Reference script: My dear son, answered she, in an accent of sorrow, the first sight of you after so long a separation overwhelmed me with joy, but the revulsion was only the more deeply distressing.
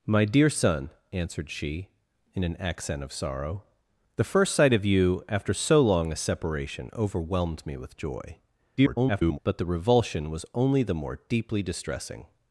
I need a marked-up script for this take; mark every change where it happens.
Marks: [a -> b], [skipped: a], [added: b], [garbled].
My dear son, answered she, in an accent of sorrow, the first sight of you after so long a separation overwhelmed me with joy, [garbled] but the revulsion was only the more deeply distressing.